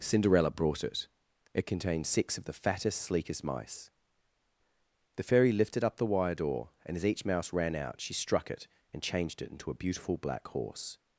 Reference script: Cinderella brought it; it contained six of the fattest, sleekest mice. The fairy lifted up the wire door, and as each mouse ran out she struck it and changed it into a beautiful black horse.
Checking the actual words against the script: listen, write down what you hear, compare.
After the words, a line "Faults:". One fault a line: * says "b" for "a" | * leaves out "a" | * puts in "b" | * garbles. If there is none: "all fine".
Cinderella brought it; it contained six of the fattest, sleekest mice. The fairy lifted up the wire door, and as each mouse ran out she struck it and changed it into a beautiful black horse.
Faults:
all fine